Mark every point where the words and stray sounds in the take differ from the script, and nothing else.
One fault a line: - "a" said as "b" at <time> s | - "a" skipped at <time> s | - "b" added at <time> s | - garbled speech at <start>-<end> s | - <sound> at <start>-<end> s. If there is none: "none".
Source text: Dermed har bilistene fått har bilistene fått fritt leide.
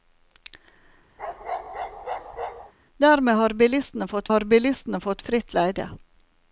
- bark at 1.2-2.7 s